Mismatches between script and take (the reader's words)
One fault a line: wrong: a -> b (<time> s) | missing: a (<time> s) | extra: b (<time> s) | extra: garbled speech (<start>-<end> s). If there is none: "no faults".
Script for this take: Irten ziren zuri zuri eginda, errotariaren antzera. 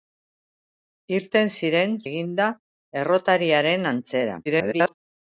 missing: zuri zuri (1.9 s)
extra: garbled speech (4.5-4.9 s)